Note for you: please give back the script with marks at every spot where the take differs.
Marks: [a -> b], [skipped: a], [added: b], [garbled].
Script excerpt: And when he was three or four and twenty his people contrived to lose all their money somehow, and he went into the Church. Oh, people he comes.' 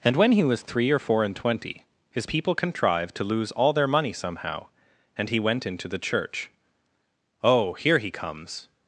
And when he was three or four and twenty his people contrived to lose all their money somehow, and he went into the Church. Oh, [people -> here] he comes.'